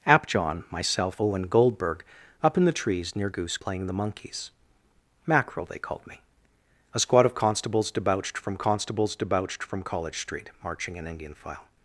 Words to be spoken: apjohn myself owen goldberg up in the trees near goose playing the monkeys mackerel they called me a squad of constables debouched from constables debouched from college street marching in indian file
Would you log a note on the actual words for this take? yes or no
no